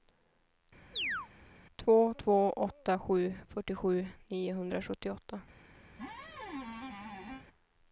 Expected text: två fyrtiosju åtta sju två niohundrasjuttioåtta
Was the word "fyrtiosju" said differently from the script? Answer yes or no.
yes